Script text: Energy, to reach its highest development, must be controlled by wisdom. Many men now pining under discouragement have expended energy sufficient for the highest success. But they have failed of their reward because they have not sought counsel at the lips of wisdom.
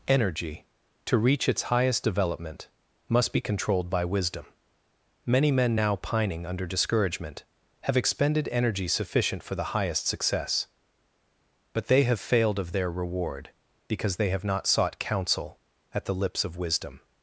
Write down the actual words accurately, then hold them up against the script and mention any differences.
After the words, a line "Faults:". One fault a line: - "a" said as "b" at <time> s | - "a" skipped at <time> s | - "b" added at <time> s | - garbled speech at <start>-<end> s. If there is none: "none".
Energy, to reach its highest development, must be controlled by wisdom. Many men now pining under discouragement have expended energy sufficient for the highest success. But they have failed of their reward because they have not sought counsel at the lips of wisdom.
Faults:
none